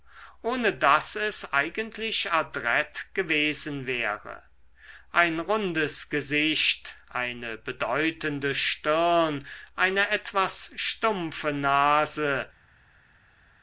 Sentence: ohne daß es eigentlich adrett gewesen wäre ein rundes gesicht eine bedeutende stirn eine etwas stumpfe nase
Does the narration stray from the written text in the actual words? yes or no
no